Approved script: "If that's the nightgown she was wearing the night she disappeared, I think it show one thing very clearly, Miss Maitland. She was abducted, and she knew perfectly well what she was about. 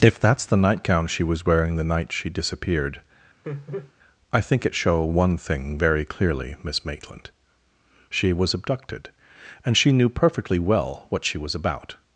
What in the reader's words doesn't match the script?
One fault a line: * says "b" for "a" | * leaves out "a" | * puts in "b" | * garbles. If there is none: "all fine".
all fine